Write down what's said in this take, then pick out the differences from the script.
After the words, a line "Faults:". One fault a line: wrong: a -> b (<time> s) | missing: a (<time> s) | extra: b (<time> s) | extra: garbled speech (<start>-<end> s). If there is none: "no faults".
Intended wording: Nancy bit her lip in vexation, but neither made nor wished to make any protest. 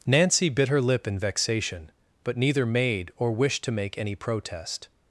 Nancy bit her lip in vexation, but neither made or wished to make any protest.
Faults:
wrong: nor -> or (3.2 s)